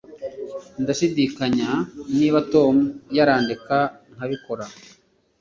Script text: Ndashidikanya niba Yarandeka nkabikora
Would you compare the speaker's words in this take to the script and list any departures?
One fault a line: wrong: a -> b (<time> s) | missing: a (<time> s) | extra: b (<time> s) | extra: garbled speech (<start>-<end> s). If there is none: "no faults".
extra: Tom (2.5 s)